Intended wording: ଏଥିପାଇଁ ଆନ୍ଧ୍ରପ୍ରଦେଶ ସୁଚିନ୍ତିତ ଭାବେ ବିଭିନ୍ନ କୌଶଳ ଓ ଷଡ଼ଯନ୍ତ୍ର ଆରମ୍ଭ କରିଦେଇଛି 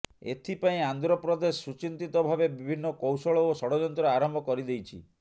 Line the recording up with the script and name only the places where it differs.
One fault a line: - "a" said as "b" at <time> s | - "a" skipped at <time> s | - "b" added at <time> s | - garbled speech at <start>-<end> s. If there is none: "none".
none